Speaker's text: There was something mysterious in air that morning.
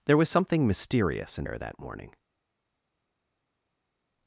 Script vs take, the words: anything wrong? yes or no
no